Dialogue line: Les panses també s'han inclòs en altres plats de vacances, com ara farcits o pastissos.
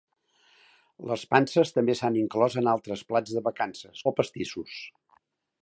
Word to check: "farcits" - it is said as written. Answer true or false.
false